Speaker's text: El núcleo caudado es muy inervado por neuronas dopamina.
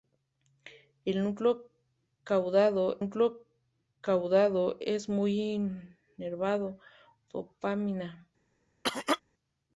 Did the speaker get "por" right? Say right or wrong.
wrong